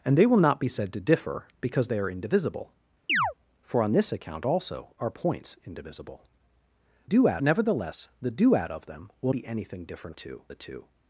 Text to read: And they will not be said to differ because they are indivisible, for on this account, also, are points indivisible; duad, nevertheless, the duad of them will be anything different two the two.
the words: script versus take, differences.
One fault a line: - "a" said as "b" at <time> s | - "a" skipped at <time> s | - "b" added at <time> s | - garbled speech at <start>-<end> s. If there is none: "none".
none